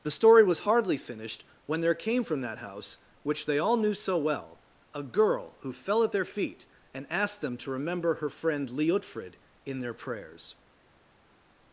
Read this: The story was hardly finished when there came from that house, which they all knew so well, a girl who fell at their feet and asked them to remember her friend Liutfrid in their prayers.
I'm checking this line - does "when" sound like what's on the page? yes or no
yes